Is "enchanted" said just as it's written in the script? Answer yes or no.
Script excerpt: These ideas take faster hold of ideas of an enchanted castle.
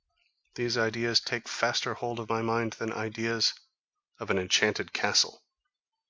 yes